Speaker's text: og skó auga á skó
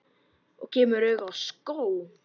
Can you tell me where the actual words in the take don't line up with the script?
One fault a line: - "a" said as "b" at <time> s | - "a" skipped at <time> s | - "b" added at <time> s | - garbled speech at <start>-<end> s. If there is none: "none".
- "skó" said as "kemur" at 0.7 s